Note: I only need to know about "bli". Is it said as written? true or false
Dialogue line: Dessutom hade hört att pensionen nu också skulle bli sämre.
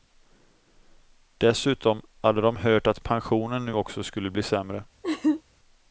true